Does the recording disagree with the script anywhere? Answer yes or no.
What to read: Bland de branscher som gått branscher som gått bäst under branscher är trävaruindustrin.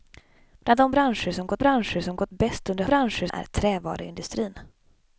no